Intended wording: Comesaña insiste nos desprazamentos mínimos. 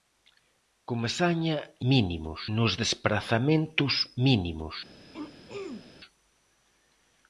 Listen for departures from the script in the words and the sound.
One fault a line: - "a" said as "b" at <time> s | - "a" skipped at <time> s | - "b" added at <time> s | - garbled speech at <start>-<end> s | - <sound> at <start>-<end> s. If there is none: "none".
- "insiste" said as "mínimos" at 1.9 s
- throat clearing at 5.1-6.0 s